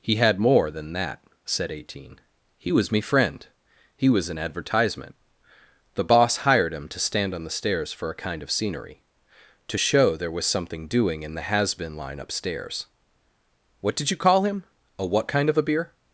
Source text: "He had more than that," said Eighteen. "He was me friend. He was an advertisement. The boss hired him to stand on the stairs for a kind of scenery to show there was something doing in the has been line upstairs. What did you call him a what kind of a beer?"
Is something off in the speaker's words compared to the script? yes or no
no